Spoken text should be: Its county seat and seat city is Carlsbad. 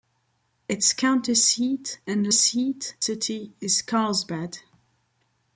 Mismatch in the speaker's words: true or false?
false